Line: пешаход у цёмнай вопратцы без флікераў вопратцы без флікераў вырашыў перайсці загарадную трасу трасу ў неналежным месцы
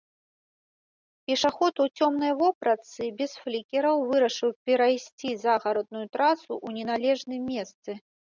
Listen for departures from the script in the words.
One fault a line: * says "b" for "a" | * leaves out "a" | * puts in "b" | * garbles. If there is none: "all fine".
* leaves out "вопратцы без флікераў"
* leaves out "трасу"